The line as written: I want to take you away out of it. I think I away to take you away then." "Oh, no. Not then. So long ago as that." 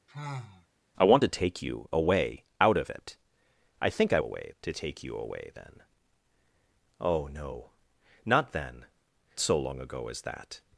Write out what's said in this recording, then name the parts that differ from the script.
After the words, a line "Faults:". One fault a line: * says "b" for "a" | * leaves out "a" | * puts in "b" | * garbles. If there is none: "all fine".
I want to take you away out of it. I think I away to take you away then." "Oh, no. Not then. So long ago as that."
Faults:
all fine